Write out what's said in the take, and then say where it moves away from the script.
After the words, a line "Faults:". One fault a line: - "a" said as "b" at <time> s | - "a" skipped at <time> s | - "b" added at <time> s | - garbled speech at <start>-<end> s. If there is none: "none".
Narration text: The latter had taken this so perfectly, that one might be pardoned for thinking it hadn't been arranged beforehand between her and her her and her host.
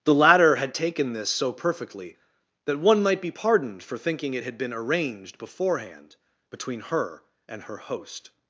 The latter had taken this so perfectly, that one might be pardoned for thinking it had been arranged beforehand between her and her host.
Faults:
- "hadn't" said as "had" at 4.4 s
- "her and her" skipped at 7.8 s